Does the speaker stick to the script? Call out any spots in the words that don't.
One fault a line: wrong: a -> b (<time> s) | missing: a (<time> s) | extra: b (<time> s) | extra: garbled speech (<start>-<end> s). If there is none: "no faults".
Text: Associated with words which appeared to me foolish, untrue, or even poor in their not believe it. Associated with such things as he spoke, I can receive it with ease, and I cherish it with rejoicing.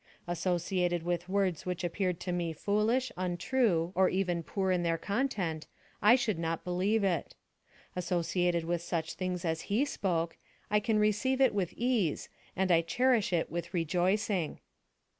extra: content I should (5.0 s)